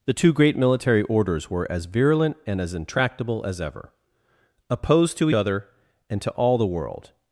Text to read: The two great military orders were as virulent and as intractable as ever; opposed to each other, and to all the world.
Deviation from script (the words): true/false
true